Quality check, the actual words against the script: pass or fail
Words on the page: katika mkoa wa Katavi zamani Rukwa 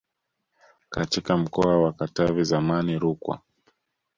pass